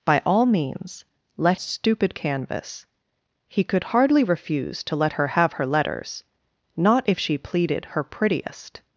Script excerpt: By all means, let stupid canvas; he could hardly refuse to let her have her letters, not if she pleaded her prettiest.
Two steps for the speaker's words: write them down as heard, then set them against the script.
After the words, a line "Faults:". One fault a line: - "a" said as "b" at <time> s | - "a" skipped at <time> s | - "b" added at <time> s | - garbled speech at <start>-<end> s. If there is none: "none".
By all means, let stupid canvas; he could hardly refuse to let her have her letters, not if she pleaded her prettiest.
Faults:
none